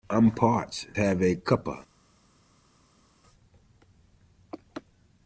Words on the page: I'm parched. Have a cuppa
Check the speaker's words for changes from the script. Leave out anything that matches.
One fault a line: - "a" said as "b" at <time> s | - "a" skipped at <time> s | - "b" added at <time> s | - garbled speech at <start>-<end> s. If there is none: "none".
none